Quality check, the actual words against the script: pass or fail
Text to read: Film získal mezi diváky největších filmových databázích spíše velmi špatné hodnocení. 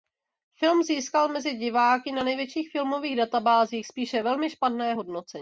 fail